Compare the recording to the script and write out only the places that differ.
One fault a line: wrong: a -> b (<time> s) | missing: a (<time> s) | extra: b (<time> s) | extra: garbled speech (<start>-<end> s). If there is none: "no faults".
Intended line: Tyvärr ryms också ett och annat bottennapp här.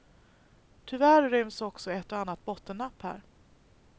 no faults